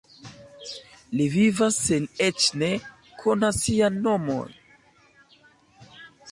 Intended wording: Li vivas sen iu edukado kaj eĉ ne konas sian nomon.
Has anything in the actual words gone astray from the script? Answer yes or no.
yes